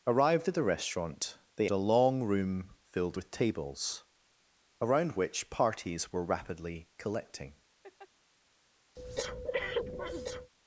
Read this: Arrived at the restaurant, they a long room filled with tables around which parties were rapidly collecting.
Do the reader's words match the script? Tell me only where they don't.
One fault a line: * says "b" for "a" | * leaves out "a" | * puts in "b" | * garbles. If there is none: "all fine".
all fine